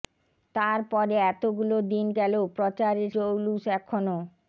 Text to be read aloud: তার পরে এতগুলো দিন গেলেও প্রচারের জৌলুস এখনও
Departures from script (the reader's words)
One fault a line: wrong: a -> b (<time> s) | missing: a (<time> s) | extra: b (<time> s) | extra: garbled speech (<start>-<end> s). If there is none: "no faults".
no faults